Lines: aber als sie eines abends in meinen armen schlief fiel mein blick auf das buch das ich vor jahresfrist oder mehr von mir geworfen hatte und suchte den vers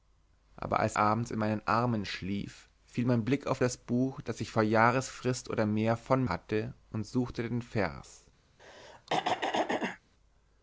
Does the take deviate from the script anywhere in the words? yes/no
yes